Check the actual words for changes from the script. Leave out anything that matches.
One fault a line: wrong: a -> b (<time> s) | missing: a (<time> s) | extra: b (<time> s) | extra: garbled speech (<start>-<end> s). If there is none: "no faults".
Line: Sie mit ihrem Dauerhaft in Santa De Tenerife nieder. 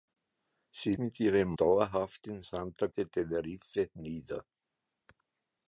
no faults